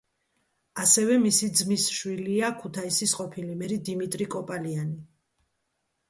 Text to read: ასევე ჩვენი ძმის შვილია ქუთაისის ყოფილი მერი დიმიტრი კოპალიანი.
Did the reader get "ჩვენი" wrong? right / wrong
wrong